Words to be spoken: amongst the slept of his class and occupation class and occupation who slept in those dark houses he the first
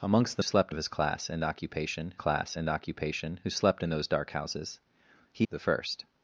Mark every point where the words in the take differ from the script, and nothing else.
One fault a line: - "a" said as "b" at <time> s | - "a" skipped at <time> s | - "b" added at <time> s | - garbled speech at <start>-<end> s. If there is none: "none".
none